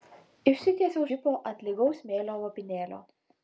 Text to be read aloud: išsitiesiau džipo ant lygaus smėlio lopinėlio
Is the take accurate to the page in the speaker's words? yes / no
yes